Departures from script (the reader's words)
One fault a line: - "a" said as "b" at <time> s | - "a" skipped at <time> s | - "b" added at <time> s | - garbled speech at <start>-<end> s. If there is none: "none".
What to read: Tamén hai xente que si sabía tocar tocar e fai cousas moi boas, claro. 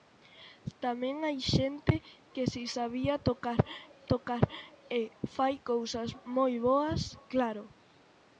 none